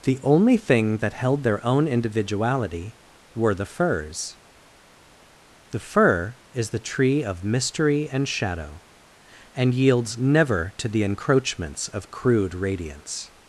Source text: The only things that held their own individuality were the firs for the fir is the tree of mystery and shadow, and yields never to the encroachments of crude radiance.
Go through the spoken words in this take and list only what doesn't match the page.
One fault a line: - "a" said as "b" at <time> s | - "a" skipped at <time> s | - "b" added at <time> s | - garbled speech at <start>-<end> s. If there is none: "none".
- "things" said as "thing" at 0.6 s
- "for" skipped at 4.4 s